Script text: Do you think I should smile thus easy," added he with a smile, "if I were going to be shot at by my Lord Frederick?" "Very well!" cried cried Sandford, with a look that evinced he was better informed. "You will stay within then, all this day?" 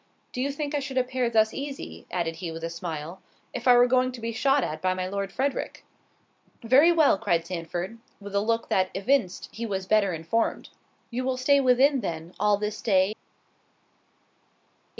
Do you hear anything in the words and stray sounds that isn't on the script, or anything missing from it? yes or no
yes